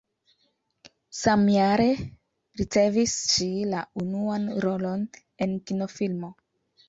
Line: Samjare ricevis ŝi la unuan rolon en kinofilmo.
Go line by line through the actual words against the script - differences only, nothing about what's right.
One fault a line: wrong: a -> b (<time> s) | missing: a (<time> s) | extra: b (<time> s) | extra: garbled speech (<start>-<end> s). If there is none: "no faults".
no faults